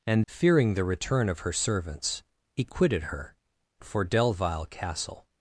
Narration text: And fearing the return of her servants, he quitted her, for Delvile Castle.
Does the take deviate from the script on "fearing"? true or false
false